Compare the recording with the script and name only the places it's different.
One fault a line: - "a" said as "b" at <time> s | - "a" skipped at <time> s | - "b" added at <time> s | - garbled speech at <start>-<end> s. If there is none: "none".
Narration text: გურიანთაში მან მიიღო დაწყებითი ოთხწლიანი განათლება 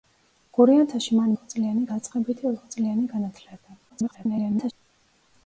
- "მიიღო" said as "ოთხწლიანი" at 1.3 s
- garbled speech at 3.9-4.7 s